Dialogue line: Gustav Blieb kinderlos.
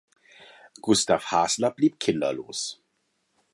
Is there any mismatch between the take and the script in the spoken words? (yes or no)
yes